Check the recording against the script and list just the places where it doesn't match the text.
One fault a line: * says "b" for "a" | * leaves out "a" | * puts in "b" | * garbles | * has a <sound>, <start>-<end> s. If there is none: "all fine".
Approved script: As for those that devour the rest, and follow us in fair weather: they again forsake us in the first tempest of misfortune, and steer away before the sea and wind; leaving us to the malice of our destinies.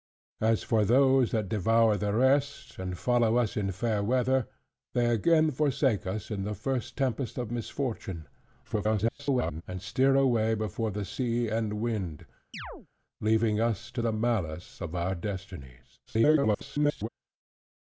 * garbles
* has a chirp, 12.5-12.9 s
* garbles